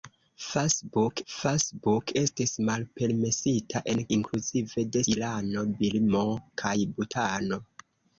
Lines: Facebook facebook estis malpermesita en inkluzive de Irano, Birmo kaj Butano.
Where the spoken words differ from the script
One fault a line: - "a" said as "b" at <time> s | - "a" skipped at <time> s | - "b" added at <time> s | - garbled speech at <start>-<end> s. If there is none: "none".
none